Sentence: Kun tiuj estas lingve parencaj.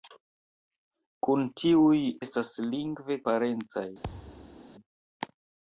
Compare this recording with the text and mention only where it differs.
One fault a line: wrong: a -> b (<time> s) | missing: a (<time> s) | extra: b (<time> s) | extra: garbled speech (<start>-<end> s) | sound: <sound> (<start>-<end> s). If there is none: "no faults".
sound: thud (4.0-4.6 s)